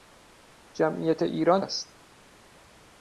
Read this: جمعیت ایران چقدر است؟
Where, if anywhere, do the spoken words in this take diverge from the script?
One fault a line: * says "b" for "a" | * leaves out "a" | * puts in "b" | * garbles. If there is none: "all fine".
* leaves out "چقدر"